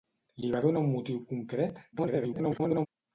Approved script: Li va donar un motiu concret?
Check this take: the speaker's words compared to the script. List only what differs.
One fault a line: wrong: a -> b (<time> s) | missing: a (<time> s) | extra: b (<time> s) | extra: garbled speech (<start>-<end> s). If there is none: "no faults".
extra: garbled speech (1.9-2.9 s)